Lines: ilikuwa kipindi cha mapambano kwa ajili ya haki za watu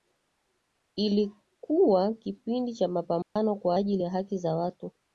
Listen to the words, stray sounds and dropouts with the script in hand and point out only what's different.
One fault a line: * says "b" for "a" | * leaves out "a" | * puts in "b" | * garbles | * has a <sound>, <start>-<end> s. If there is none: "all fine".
* has a dropout, 3.2-3.4 s